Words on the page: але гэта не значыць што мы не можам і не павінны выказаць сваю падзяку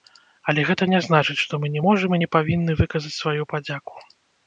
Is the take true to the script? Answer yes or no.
yes